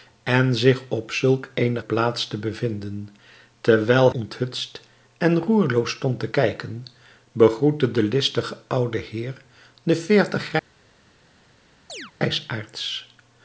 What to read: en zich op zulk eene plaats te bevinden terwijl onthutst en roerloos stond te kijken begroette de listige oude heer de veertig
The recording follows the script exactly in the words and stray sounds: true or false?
false